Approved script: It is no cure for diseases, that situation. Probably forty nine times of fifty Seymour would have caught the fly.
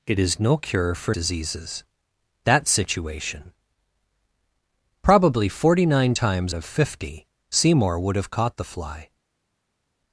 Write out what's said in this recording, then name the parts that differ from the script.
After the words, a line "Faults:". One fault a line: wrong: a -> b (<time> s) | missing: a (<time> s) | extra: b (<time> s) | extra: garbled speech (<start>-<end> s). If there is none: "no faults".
It is no cure for diseases, that situation. Probably forty nine times of fifty Seymour would have caught the fly.
Faults:
no faults